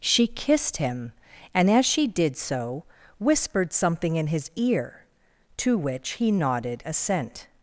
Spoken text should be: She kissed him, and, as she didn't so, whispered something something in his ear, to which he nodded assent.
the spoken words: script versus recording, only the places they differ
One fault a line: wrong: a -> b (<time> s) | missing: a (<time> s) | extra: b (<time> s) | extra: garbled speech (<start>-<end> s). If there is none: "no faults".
wrong: didn't -> did (2.1 s)
missing: something (4.1 s)